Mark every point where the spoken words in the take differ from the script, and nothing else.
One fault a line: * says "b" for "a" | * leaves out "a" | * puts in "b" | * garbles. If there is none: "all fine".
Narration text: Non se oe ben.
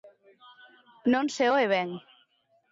all fine